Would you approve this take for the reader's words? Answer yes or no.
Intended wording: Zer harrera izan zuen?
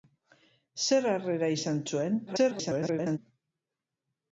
no